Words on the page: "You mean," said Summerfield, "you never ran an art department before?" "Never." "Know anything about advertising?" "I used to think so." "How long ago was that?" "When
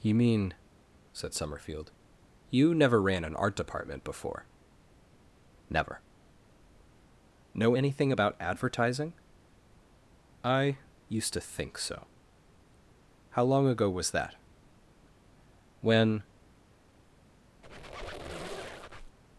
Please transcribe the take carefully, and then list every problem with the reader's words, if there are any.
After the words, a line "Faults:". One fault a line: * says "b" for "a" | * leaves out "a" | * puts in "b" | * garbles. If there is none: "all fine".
"You mean," said Summerfield, "you never ran an art department before?" "Never." "Know anything about advertising?" "I used to think so." "How long ago was that?" "When
Faults:
all fine